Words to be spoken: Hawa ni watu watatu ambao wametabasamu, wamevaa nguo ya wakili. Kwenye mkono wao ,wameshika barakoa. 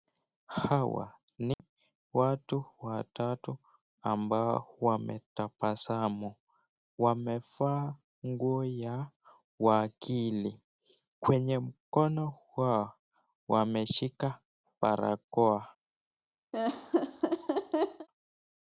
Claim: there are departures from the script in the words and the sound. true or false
true